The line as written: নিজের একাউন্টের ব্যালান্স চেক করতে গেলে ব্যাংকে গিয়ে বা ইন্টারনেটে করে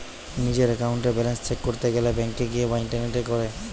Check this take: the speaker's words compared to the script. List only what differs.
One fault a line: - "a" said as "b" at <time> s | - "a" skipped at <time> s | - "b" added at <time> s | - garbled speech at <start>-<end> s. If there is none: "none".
none